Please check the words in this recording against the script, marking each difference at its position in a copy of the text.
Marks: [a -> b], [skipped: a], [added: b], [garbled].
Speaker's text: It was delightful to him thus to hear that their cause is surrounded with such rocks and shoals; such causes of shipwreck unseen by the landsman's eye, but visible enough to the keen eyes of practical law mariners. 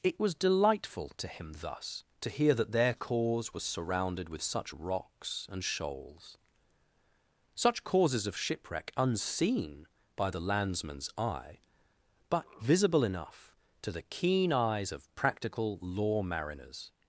It was delightful to him thus to hear that their cause [is -> was] surrounded with such rocks and shoals; such causes of shipwreck unseen by the landsman's eye, but visible enough to the keen eyes of practical law mariners.